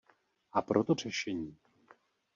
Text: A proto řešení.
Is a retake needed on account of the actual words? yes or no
no